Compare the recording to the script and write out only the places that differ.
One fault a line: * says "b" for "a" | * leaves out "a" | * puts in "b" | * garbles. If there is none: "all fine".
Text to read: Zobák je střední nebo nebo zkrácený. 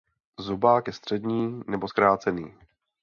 * leaves out "nebo"